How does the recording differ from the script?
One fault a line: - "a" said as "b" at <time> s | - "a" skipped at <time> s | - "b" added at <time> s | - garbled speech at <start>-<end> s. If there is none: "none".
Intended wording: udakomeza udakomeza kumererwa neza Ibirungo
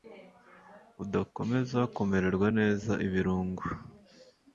- "udakomeza" skipped at 1.8 s